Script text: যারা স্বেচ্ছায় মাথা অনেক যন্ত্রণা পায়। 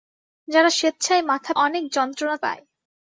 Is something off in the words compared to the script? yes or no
no